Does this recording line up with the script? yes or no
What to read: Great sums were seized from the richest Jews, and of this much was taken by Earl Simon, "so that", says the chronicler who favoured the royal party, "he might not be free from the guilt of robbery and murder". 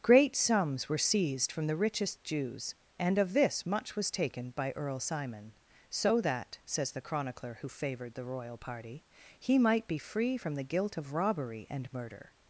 no